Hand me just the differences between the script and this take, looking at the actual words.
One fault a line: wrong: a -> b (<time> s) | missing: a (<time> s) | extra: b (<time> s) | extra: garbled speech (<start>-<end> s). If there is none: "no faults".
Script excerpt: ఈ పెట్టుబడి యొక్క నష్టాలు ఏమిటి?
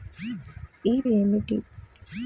missing: పెట్టుబడి యొక్క నష్టాలు (0.9 s)